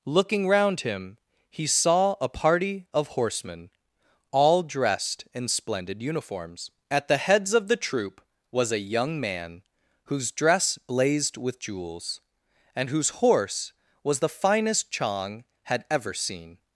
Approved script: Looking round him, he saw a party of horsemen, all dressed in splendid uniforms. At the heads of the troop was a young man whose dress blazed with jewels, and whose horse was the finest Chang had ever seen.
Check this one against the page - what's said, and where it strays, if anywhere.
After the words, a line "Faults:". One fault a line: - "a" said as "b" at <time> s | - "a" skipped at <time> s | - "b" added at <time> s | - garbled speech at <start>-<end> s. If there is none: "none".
Looking round him, he saw a party of horsemen, all dressed in splendid uniforms. At the heads of the troop was a young man whose dress blazed with jewels, and whose horse was the finest Chang had ever seen.
Faults:
none